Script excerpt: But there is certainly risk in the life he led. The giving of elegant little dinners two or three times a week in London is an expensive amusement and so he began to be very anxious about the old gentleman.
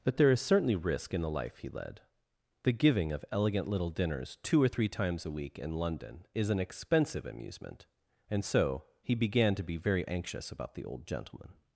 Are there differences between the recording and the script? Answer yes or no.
no